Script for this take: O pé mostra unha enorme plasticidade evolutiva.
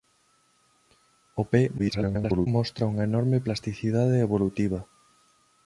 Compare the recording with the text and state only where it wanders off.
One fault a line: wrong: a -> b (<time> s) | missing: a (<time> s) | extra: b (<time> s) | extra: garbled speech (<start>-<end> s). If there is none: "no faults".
extra: garbled speech (1.8-2.5 s)